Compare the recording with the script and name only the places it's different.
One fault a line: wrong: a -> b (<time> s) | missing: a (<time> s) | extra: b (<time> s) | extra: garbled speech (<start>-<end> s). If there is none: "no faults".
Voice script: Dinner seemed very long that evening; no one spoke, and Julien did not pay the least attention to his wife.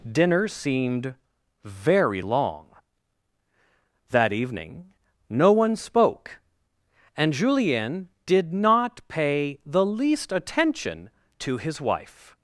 no faults